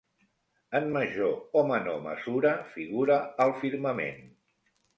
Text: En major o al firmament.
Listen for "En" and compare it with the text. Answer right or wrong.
right